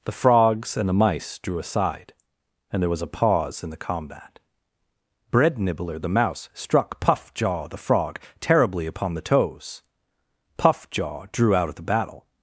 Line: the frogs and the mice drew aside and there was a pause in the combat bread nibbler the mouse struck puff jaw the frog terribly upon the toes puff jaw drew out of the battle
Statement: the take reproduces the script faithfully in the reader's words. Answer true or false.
true